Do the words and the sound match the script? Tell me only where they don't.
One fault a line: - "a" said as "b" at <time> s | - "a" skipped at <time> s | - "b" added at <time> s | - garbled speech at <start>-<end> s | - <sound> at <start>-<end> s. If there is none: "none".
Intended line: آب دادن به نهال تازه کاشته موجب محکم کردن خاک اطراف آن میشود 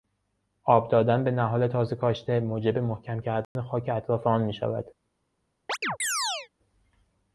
- dropout at 3.4-3.6 s
- chirp at 5.7-6.5 s